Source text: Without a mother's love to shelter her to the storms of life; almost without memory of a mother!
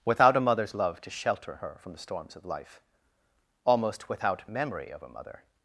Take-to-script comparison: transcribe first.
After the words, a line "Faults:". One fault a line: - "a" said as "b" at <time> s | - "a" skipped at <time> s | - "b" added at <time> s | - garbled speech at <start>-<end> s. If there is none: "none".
Without a mother's love to shelter her from the storms of life; almost without memory of a mother!
Faults:
- "to" said as "from" at 1.8 s